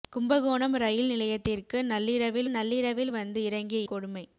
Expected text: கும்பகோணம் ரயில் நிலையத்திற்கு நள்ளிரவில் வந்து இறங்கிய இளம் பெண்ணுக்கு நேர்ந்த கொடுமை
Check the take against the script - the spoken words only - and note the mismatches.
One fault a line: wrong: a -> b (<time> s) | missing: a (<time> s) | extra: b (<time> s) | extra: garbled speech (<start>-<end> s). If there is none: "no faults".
extra: நள்ளிரவில் (2.5 s)
missing: இளம் பெண்ணுக்கு நேர்ந்த (3.8 s)